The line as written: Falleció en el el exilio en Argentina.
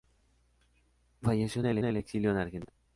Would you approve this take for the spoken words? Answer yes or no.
yes